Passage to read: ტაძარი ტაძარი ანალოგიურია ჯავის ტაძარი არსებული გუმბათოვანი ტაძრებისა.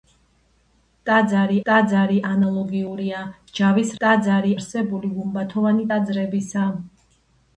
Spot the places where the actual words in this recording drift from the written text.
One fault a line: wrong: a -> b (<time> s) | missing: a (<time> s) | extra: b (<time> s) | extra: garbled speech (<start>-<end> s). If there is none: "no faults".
no faults